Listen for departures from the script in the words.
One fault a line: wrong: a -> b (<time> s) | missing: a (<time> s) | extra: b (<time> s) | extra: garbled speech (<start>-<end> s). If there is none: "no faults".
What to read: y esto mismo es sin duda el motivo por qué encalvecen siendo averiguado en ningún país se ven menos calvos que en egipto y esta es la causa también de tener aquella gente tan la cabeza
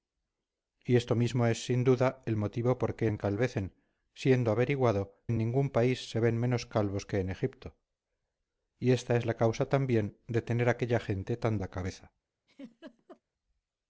no faults